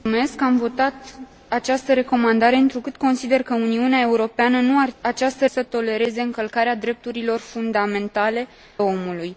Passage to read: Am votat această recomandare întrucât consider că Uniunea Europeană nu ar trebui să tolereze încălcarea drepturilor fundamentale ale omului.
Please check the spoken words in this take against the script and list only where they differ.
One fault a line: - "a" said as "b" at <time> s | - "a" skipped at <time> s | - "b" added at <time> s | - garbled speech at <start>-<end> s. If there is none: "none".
- "trebui" said as "această" at 5.0 s
- "ale" skipped at 8.5 s